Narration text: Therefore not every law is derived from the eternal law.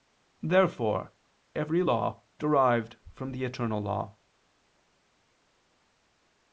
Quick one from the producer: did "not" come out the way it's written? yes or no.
no